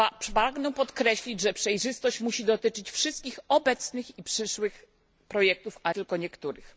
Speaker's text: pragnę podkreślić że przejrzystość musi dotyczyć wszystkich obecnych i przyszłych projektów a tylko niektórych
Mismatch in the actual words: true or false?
false